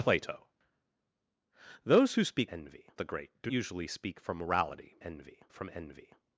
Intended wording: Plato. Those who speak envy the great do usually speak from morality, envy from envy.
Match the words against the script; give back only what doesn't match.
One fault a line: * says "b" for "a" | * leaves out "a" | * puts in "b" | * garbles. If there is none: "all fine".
all fine